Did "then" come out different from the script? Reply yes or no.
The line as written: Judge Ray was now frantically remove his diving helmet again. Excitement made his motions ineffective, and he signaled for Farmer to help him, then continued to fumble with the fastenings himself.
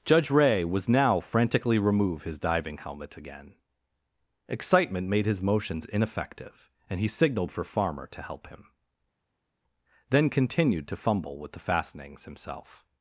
no